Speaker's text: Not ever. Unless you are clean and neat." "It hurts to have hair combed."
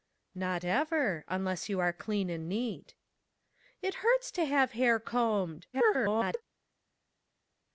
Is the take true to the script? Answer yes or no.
no